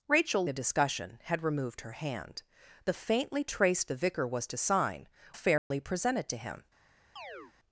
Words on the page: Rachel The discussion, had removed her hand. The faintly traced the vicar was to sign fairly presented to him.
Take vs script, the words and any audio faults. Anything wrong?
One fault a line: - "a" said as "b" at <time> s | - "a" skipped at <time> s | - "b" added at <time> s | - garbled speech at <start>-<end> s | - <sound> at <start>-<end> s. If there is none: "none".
- dropout at 5.6-5.7 s
- chirp at 7.2-7.5 s